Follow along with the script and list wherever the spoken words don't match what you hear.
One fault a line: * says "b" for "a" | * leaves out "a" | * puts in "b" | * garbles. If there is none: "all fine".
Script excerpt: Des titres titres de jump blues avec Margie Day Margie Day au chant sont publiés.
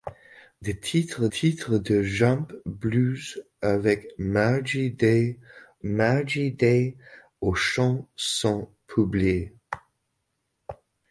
all fine